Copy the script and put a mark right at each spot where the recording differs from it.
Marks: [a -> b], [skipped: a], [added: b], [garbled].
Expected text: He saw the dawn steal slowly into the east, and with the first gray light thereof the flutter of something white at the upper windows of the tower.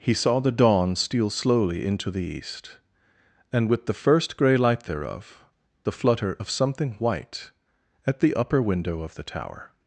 He saw the dawn steal slowly into the east, and with the first gray light thereof the flutter of something white at the upper [windows -> window] of the tower.